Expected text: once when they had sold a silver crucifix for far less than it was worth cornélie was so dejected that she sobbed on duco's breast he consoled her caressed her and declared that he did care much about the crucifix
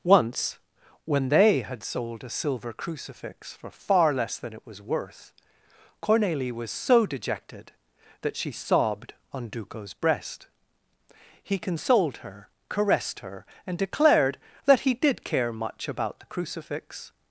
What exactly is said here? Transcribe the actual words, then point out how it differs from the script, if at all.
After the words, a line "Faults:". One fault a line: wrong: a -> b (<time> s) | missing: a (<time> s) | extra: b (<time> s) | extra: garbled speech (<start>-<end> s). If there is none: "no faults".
once when they had sold a silver crucifix for far less than it was worth cornélie was so dejected that she sobbed on duco's breast he consoled her caressed her and declared that he did care much about the crucifix
Faults:
no faults